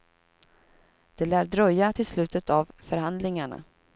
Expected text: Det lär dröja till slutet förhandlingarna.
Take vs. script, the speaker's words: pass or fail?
fail